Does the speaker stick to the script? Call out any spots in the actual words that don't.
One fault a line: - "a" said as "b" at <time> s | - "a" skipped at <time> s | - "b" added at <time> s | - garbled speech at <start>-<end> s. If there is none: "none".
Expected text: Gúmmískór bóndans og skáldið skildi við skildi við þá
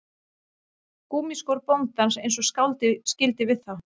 - "eins" added at 2.2 s
- "skildi við" skipped at 3.6 s